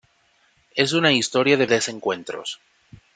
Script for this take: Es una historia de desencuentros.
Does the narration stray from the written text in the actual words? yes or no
no